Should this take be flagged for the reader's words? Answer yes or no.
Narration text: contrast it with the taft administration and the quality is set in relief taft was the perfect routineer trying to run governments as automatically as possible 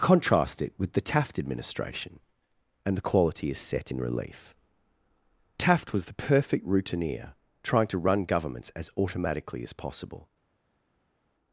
no